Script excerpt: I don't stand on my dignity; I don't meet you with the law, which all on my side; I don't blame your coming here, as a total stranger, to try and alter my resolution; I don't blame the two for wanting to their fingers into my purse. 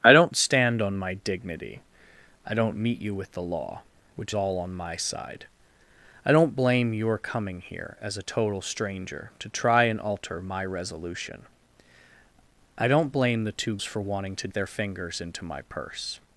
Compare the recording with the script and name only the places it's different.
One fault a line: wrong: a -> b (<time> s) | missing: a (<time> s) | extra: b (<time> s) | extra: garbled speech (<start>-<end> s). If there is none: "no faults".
no faults